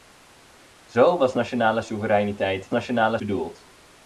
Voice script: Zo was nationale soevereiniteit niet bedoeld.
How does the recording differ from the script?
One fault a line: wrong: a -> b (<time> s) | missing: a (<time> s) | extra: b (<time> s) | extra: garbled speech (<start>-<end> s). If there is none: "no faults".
wrong: niet -> nationale (2.7 s)